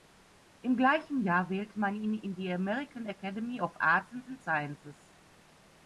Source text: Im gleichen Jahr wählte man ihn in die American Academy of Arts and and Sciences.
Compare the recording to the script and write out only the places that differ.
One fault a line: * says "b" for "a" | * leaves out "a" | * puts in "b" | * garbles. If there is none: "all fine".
all fine